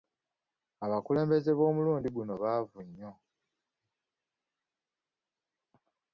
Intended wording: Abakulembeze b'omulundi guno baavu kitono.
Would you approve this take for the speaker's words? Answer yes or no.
no